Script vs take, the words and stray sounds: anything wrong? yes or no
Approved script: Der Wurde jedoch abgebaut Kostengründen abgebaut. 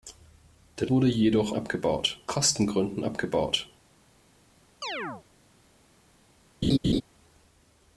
yes